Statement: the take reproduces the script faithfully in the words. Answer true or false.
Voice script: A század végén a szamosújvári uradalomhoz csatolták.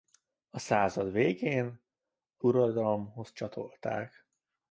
false